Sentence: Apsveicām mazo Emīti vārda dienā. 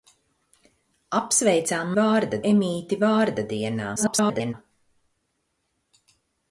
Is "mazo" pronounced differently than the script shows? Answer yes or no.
yes